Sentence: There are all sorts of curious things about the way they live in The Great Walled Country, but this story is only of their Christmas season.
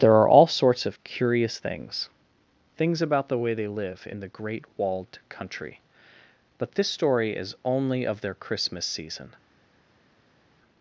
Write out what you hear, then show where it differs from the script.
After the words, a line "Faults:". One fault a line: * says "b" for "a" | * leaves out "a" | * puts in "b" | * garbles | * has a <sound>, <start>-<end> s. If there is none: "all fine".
There are all sorts of curious things things about the way they live in The Great Walled Country, but this story is only of their Christmas season.
Faults:
* puts in "things"